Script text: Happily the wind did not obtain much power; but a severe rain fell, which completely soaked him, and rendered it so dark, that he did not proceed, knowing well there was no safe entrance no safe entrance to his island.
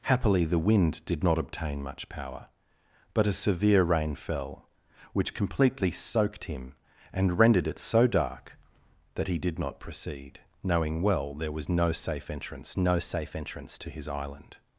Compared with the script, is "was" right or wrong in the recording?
right